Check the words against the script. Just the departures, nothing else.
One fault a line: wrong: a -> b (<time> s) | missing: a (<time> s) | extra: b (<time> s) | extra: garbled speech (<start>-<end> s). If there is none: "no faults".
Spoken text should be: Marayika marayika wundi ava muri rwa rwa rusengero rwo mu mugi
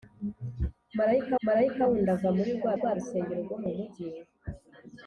no faults